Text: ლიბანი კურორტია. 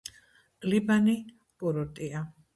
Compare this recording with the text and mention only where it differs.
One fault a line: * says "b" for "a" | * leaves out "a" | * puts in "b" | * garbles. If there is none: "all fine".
all fine